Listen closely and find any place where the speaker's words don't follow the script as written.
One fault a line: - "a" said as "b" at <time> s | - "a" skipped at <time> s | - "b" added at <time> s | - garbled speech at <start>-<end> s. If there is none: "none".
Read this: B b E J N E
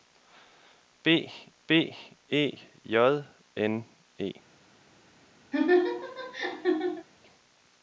none